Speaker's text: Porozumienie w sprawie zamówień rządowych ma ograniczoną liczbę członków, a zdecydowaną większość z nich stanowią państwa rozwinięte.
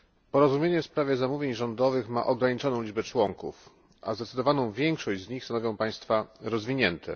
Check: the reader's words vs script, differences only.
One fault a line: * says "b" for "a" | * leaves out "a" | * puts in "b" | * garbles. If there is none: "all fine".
all fine